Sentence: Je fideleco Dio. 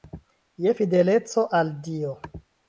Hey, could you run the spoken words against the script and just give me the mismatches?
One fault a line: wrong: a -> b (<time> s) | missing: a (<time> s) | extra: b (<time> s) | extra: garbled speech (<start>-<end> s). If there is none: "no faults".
extra: al (1.6 s)